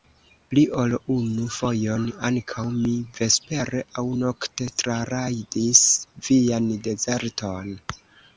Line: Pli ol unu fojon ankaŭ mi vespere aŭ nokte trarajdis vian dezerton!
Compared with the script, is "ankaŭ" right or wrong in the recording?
right